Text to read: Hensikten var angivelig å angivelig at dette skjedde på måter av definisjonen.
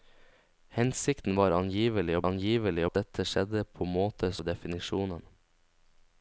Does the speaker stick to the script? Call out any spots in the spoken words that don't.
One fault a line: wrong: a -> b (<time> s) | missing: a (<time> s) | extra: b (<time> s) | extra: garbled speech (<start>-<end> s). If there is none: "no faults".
no faults